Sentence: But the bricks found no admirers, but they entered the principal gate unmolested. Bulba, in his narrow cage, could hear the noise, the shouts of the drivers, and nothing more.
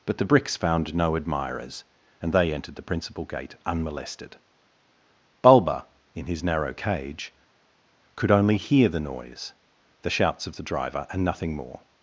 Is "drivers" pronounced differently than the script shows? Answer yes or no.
yes